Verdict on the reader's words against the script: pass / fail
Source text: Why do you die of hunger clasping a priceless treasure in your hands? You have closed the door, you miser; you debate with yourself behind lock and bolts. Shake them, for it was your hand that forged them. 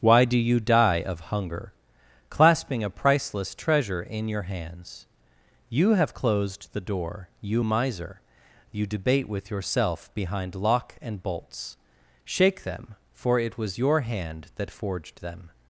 pass